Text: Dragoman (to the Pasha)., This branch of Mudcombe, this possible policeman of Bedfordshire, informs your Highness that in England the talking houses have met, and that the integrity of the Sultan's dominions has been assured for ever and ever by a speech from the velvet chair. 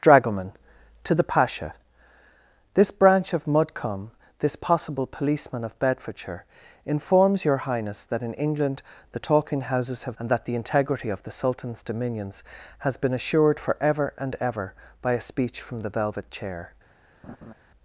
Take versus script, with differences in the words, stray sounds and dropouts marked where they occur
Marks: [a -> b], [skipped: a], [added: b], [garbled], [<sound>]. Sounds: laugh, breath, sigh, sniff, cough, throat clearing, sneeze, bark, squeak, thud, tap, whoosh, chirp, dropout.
Dragoman (to the Pasha)., This branch of Mudcombe, this possible policeman of Bedfordshire, informs your Highness that in England the talking houses have [skipped: met,] and that the integrity of the Sultan's dominions has been assured for ever and ever by a speech from the velvet chair. [laugh]